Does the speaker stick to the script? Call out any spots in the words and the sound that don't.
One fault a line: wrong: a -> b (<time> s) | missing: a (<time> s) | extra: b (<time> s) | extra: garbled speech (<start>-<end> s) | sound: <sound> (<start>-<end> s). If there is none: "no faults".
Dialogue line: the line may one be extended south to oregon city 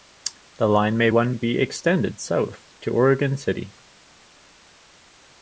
no faults